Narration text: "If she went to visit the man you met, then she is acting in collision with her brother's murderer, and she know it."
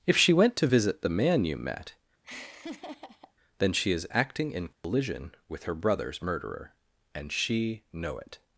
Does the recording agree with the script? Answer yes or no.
yes